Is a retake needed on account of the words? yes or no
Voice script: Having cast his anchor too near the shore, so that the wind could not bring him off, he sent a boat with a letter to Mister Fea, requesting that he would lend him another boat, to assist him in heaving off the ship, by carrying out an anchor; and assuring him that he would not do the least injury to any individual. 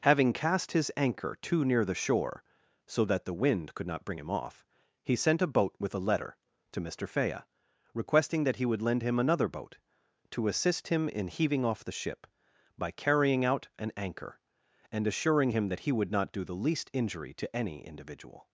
no